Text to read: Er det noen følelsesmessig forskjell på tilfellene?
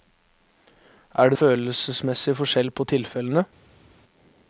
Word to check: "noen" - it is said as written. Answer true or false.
false